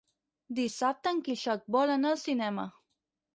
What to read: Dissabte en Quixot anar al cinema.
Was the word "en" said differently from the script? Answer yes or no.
no